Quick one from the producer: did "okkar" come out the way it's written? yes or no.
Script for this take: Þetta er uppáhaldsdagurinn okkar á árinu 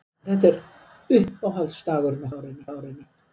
no